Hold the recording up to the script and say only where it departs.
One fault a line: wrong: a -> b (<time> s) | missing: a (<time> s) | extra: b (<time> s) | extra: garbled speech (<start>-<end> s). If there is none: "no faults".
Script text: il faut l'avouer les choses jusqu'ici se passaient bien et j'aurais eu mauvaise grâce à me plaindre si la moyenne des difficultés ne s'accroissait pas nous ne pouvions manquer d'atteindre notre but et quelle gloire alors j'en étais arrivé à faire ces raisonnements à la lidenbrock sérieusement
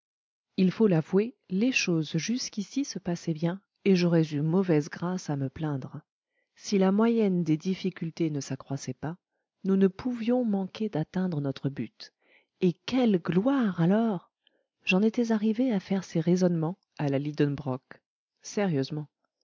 no faults